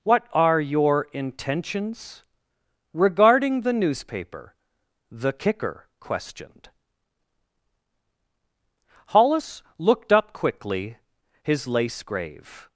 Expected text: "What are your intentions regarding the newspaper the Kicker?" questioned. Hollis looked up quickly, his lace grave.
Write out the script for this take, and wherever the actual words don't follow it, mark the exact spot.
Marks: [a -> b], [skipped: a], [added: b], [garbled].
"What are your intentions regarding the newspaper the Kicker?" questioned. Hollis looked up quickly, his lace grave.